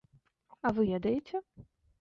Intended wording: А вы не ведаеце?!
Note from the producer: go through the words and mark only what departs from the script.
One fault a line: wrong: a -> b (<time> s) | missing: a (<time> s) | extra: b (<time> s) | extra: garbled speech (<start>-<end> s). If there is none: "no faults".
missing: не (0.9 s)